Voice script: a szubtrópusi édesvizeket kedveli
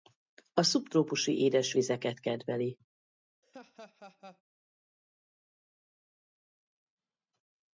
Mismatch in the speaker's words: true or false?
false